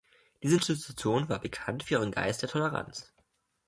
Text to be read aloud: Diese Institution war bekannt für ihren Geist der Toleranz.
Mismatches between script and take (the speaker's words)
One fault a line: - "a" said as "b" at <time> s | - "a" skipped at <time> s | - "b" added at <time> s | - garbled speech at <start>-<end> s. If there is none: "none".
none